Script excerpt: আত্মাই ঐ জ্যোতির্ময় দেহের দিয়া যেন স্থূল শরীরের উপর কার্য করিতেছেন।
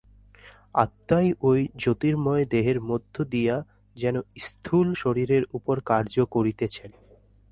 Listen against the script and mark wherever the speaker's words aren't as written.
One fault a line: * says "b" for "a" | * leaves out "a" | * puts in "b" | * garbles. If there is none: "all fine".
* puts in "মধ্য"